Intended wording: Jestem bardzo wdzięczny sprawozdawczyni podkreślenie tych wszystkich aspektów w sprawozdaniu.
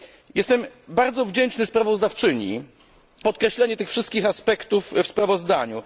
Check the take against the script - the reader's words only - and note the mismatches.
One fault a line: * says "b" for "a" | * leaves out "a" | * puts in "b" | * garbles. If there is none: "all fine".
all fine